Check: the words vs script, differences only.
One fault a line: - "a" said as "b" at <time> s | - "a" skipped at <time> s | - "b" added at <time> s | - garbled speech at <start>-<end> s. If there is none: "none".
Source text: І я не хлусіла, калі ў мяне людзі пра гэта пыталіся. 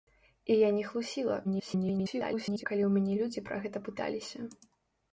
- garbled speech at 1.4-2.7 s